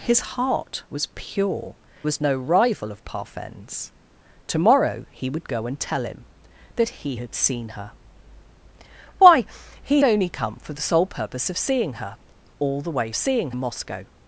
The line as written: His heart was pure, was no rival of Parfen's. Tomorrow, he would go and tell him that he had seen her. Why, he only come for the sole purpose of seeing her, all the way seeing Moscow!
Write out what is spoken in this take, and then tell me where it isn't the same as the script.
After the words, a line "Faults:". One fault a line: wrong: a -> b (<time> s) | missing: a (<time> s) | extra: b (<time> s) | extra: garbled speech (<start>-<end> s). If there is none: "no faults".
His heart was pure, was no rival of Parfen's. Tomorrow, he would go and tell him that he had seen her. Why, he only come for the sole purpose of seeing her, all the way seeing Moscow!
Faults:
no faults